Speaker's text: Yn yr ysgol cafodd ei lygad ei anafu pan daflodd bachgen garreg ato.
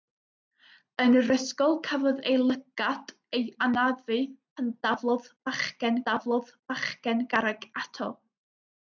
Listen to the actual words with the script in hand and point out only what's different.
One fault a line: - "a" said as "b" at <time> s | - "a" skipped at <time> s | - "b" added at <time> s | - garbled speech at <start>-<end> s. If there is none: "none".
- "daflodd bachgen" added at 6.1 s